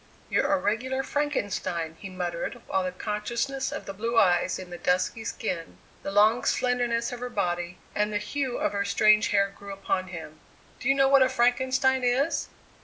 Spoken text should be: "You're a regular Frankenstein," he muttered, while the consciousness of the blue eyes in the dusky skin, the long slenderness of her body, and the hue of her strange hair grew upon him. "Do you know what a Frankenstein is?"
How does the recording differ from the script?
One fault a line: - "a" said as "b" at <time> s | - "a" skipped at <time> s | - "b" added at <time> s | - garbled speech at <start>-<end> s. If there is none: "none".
none